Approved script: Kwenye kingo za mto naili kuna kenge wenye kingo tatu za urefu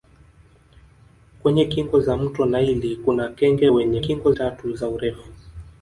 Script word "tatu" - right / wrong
right